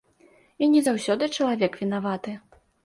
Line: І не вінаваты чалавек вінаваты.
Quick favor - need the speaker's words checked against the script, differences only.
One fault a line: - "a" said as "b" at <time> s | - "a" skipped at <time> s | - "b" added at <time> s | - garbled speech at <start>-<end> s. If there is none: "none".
- "вінаваты" said as "заўсёды" at 0.9 s